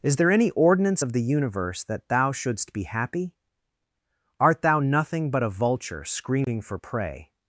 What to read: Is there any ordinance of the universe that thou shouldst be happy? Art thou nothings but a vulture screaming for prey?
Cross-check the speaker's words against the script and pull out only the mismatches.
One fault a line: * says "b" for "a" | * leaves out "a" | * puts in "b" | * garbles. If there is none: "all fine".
* says "nothing" for "nothings"